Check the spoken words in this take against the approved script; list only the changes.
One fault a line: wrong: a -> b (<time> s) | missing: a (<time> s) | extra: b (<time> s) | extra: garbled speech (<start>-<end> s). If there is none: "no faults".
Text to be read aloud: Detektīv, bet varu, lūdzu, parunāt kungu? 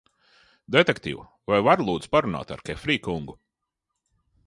wrong: bet -> vai (1.5 s)
extra: ar Kefrija (2.6 s)